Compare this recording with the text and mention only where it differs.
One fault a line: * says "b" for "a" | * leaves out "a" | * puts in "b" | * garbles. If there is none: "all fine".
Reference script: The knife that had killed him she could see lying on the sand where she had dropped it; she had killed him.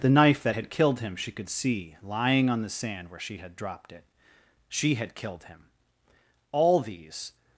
* puts in "All these"